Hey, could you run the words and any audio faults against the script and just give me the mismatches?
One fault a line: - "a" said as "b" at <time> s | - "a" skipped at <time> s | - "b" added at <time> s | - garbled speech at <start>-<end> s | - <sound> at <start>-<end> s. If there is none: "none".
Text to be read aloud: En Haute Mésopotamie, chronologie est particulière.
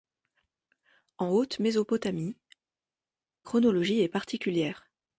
none